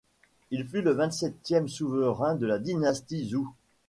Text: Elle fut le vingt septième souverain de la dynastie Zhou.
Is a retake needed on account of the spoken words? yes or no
yes